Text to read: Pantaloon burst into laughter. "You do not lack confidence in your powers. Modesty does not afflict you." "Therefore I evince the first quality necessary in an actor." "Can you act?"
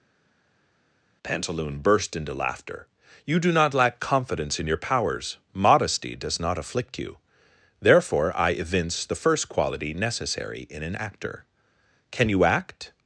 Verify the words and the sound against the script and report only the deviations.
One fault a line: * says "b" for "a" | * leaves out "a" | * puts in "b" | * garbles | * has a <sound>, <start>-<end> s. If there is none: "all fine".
all fine